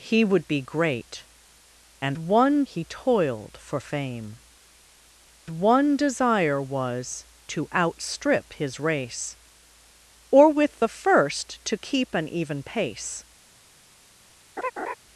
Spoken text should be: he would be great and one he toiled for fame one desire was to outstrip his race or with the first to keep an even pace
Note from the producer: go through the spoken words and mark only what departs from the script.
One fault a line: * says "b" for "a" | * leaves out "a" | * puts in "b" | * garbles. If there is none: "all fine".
all fine